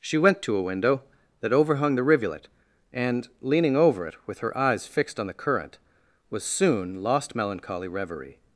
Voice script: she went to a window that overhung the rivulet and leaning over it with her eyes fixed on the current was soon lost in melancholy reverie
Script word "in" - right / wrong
wrong